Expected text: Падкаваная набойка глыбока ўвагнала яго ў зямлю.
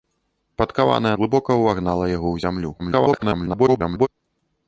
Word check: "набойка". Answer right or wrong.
wrong